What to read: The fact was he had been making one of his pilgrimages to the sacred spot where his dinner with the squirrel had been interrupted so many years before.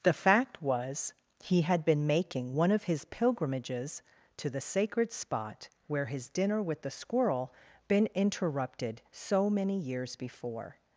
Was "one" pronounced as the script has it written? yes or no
yes